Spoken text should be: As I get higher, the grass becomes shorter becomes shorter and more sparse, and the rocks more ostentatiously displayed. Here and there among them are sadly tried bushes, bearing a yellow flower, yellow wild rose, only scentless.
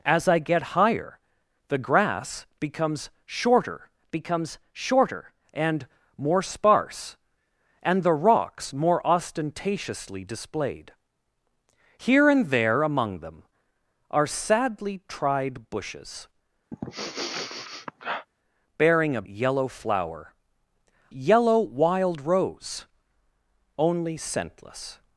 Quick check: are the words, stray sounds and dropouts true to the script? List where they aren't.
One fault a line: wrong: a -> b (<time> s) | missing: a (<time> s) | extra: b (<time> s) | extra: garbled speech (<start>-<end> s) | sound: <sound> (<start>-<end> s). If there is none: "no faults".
sound: sniff (16.7-18.3 s)